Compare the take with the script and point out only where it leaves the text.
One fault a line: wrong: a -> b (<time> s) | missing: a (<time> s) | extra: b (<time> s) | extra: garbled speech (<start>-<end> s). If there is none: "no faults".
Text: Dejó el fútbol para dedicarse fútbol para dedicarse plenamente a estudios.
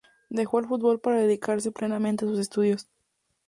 missing: fútbol para dedicarse (1.7 s)
extra: sus (2.3 s)